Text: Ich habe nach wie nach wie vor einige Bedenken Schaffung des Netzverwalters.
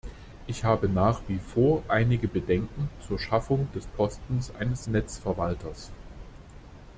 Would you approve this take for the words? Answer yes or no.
no